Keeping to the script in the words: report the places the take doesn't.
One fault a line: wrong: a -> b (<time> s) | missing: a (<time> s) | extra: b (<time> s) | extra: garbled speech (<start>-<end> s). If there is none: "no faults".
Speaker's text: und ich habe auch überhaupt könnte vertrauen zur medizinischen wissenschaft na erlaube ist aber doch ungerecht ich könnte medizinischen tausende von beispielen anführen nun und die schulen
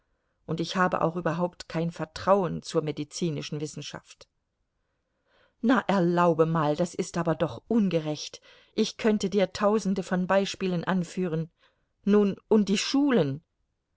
wrong: könnte -> kein (1.7 s)
extra: mal das (6.4 s)
wrong: medizinischen -> dir (9.3 s)